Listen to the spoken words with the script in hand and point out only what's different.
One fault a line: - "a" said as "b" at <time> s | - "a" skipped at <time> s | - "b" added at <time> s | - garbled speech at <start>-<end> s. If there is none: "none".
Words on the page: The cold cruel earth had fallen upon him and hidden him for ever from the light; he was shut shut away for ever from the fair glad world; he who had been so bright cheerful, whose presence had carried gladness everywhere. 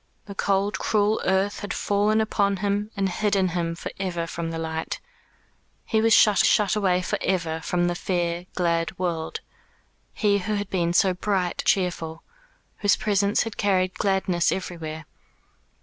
none